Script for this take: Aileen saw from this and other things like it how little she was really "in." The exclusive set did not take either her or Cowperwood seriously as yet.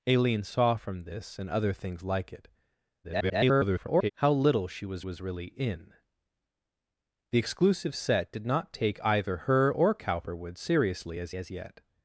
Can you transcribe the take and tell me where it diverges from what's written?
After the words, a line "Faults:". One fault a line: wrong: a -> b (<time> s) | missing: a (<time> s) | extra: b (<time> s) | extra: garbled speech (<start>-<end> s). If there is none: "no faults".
Aileen saw from this and other things like it [garbled] how little she was was really "in." The exclusive set did not take either her or Cowperwood seriously as as yet.
Faults:
extra: garbled speech (3.0-4.1 s)
extra: was (5.0 s)
extra: as (11.3 s)